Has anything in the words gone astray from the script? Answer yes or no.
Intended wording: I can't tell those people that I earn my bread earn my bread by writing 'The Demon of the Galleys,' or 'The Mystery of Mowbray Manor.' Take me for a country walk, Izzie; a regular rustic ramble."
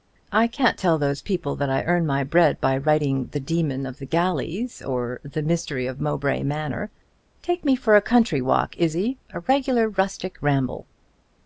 yes